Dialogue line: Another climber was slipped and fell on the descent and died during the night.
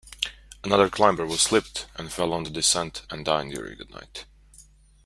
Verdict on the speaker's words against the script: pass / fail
pass